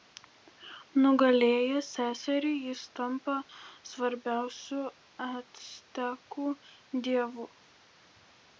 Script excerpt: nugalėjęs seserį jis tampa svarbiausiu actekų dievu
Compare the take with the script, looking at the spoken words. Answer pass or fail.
pass